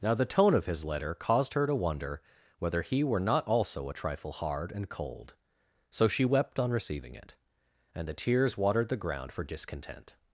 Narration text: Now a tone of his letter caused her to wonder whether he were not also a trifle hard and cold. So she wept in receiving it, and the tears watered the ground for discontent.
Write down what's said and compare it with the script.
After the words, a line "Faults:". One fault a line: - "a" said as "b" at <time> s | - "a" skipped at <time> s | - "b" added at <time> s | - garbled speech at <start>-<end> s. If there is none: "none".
Now the tone of his letter caused her to wonder whether he were not also a trifle hard and cold. So she wept on receiving it, and the tears watered the ground for discontent.
Faults:
- "a" said as "the" at 0.1 s
- "in" said as "on" at 6.6 s